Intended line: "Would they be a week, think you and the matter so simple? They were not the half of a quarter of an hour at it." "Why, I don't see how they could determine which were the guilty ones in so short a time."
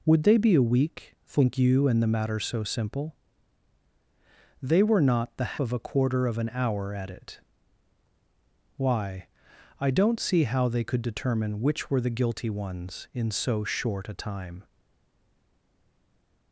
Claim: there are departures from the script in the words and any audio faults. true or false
true